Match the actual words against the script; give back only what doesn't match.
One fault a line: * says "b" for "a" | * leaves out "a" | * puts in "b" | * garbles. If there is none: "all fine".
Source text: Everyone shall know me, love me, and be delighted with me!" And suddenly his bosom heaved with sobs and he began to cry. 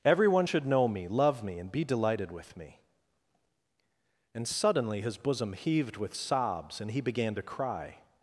* says "should" for "shall"